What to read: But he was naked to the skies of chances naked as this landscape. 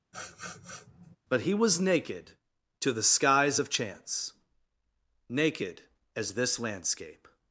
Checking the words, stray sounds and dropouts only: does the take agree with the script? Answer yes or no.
no